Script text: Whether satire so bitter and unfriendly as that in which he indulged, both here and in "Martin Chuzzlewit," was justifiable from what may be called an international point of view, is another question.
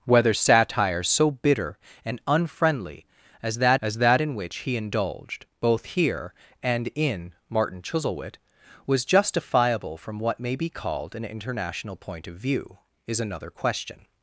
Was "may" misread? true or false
false